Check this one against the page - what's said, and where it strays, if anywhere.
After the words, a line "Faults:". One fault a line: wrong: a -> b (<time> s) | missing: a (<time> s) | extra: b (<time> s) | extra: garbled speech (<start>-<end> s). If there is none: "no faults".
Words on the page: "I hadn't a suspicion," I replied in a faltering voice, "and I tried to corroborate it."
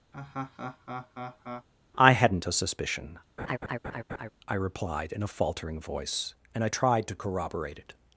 "I hadn't a suspicion," I replied in a faltering voice, "and I tried to corroborate it."
Faults:
no faults